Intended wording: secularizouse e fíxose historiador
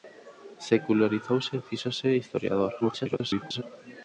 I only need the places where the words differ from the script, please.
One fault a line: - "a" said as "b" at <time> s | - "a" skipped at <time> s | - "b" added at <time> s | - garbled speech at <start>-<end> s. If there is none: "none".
- garbled speech at 2.8-3.6 s